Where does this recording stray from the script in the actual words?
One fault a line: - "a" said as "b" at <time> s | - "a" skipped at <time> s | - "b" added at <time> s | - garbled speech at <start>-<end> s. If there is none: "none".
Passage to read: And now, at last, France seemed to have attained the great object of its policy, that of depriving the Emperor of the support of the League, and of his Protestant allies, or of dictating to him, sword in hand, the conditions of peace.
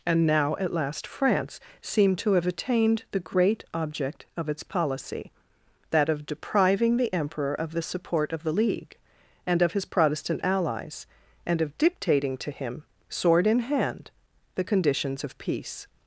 - "or" said as "and" at 11.5 s